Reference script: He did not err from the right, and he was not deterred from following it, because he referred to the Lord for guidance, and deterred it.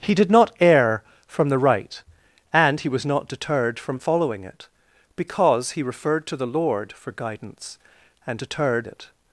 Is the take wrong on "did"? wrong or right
right